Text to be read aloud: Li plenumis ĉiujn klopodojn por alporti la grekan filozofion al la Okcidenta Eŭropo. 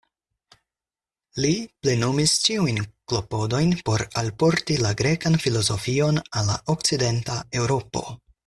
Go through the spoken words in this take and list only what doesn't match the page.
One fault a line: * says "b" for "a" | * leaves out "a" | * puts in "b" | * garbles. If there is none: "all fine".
all fine